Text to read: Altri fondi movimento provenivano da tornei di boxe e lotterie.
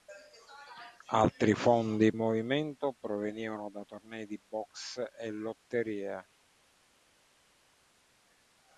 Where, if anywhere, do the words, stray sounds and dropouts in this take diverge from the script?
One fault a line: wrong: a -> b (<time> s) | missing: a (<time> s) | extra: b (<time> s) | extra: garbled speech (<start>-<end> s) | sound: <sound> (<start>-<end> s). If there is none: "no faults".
no faults